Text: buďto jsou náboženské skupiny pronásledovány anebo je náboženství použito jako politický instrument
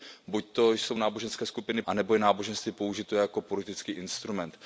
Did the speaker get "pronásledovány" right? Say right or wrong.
wrong